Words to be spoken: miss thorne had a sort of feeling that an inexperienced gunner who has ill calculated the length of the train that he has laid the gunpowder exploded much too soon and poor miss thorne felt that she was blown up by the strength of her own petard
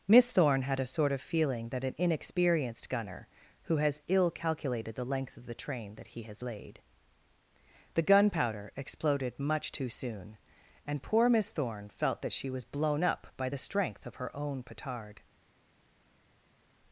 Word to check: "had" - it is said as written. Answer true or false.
true